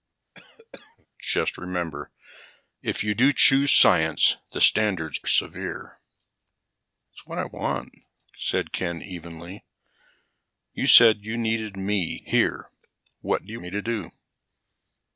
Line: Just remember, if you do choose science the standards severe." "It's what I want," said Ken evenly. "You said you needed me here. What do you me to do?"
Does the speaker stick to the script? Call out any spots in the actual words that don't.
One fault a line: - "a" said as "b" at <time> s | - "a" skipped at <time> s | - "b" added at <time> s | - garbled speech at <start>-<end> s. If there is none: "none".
none